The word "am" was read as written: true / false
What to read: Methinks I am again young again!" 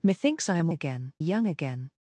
true